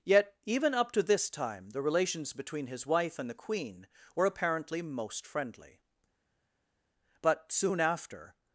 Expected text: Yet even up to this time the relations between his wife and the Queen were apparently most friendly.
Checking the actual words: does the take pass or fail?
fail